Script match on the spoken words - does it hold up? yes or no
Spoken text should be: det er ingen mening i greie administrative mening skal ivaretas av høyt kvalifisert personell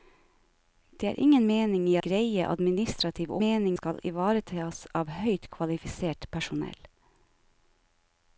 yes